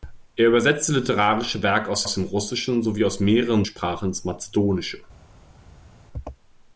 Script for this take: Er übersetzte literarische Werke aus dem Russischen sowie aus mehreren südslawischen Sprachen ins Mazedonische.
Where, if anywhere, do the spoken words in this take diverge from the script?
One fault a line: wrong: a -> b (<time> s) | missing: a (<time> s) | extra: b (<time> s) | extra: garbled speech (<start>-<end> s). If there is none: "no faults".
extra: aus (2.0 s)
missing: südslawischen (3.7 s)